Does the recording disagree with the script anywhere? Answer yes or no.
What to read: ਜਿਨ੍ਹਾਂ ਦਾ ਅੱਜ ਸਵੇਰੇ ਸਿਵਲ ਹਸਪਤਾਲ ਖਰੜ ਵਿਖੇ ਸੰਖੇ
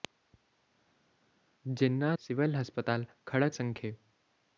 yes